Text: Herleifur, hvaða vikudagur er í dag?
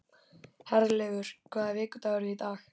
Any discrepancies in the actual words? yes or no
no